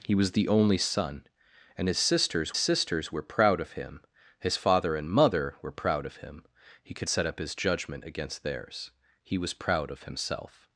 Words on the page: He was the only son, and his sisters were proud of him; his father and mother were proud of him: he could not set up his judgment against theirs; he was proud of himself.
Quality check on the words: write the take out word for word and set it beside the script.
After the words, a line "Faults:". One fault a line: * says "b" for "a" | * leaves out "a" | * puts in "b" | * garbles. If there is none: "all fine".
He was the only son, and his sisters sisters were proud of him; his father and mother were proud of him: he could set up his judgment against theirs; he was proud of himself.
Faults:
* puts in "sisters"
* leaves out "not"